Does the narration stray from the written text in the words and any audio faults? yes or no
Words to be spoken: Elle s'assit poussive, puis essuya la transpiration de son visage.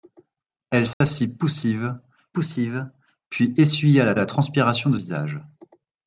yes